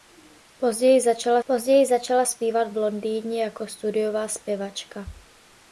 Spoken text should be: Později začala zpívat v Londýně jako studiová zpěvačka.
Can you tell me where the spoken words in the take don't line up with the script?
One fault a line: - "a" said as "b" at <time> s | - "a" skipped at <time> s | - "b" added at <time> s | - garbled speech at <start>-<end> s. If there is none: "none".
- "později začala" added at 1.4 s